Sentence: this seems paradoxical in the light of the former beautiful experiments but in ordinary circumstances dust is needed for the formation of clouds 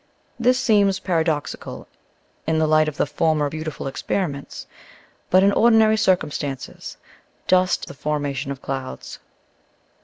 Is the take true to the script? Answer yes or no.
no